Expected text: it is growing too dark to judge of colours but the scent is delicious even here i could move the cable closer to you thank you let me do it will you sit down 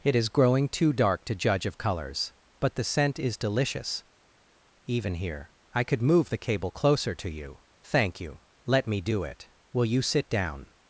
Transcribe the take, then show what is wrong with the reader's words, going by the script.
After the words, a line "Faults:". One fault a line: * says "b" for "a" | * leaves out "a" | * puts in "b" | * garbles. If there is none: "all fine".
it is growing too dark to judge of colours but the scent is delicious even here i could move the cable closer to you thank you let me do it will you sit down
Faults:
all fine